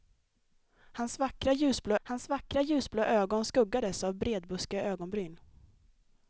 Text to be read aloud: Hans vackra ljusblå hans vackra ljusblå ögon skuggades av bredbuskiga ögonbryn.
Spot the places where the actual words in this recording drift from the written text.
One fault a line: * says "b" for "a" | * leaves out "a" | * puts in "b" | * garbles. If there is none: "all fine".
all fine